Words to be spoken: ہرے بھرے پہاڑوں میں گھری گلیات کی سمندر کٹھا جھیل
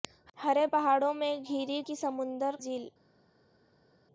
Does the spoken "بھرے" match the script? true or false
false